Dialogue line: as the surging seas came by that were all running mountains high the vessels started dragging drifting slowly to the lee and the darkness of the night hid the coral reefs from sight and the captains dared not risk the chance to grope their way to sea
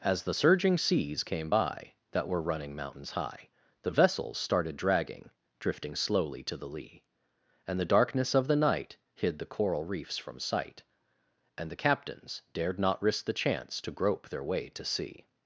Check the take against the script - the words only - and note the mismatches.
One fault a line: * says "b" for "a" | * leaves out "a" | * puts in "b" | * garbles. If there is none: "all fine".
* leaves out "all"